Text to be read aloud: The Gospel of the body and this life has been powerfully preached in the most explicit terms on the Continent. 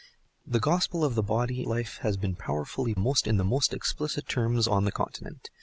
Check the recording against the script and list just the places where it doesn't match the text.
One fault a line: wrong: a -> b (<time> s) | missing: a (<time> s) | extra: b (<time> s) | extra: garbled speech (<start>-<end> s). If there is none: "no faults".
missing: and this (1.7 s)
wrong: preached -> most (3.0 s)